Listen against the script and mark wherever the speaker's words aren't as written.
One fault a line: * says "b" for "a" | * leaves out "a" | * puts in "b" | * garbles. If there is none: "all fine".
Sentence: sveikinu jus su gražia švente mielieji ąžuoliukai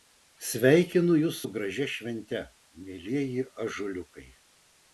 all fine